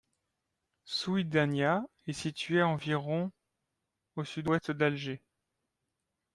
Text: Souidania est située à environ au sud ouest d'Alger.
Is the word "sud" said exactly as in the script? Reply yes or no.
yes